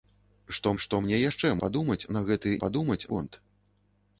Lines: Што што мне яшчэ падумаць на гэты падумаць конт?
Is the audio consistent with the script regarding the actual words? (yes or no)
yes